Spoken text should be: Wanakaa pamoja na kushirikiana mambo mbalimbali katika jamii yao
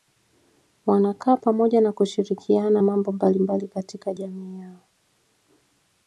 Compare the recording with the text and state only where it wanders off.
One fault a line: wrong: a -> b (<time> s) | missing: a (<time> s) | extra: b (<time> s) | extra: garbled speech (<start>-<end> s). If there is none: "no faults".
no faults